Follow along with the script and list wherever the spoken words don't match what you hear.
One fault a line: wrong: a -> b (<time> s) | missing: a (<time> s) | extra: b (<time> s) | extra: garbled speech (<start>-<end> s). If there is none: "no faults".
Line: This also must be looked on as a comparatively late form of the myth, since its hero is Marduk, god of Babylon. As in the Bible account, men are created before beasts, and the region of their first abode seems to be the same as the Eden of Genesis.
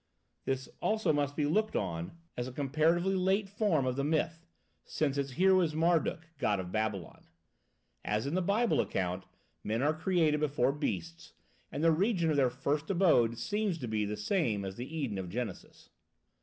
no faults